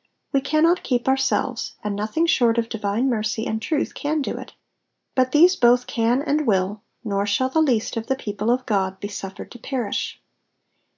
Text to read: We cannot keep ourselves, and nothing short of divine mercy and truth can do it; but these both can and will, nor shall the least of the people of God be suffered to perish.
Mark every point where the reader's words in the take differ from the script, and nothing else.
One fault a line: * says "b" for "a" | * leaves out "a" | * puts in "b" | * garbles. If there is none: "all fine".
all fine